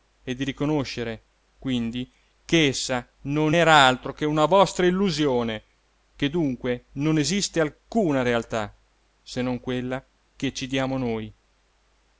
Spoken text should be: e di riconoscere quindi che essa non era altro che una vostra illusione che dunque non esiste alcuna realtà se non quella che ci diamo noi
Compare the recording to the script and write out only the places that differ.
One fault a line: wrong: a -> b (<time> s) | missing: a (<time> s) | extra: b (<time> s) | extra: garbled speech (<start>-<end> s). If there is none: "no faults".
no faults